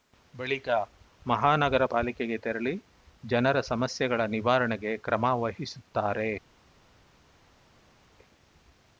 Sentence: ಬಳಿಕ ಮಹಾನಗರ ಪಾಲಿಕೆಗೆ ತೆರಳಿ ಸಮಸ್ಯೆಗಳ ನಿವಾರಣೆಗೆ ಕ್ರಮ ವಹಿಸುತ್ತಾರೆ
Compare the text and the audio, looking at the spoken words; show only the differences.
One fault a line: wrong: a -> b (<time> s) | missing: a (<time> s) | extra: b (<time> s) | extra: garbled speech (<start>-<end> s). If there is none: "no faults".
extra: ಜನರ (3.2 s)